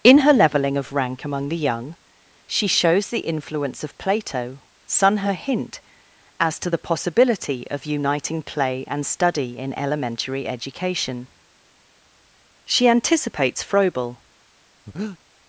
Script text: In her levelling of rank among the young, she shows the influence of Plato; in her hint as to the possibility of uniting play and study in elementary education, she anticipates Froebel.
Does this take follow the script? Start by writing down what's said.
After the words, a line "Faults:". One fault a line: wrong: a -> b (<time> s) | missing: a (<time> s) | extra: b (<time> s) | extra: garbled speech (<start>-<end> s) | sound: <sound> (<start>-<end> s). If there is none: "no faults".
In her levelling of rank among the young, she shows the influence of Plato; son her hint as to the possibility of uniting play and study in elementary education, she anticipates Froebel.
Faults:
wrong: in -> son (4.8 s)
sound: breath (14.9-15.2 s)